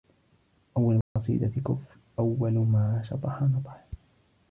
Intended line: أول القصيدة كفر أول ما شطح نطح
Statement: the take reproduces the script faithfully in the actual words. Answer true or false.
true